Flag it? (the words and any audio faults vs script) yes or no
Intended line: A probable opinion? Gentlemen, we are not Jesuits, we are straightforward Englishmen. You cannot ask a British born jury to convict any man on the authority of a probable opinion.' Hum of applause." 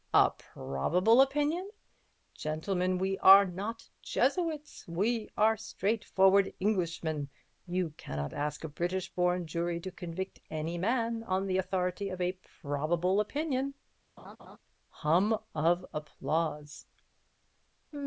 yes